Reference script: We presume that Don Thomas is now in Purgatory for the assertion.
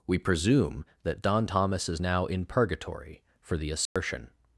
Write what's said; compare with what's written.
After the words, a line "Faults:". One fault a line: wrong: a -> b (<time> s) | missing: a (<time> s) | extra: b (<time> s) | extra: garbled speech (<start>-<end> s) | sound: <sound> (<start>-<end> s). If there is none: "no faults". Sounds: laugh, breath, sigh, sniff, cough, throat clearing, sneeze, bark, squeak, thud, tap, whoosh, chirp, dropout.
We presume that Don Thomas is now in Purgatory for the assertion.
Faults:
sound: dropout (3.9-4.0 s)